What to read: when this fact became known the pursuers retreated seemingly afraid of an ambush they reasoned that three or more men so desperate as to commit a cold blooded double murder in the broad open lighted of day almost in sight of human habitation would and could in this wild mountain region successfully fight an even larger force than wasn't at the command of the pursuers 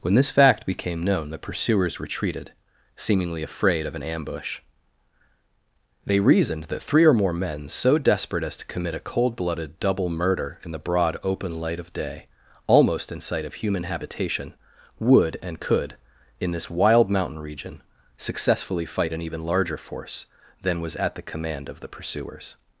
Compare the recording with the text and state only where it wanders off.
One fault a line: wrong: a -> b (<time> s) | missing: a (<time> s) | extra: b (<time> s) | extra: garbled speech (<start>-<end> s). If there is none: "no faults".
wrong: lighted -> light (11.5 s)
wrong: wasn't -> was (20.8 s)